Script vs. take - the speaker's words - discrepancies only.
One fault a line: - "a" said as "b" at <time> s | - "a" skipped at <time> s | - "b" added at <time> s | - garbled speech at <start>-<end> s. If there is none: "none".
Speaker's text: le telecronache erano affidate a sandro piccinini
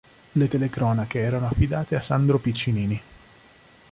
none